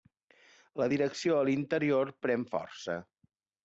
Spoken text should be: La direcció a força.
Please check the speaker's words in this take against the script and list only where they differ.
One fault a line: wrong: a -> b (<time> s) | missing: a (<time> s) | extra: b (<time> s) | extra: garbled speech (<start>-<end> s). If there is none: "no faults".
extra: l'interior pren (1.5 s)